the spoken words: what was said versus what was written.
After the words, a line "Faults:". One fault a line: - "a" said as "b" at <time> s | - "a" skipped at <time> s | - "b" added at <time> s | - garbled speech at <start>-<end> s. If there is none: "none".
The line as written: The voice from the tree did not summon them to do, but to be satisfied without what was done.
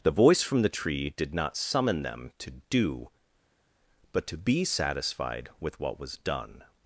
The voice from the tree did not summon them to do, but to be satisfied with what was done.
Faults:
- "without" said as "with" at 5.6 s